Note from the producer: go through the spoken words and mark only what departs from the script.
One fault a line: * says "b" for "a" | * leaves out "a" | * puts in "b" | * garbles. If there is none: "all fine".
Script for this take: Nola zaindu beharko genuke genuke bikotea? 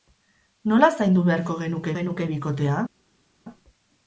all fine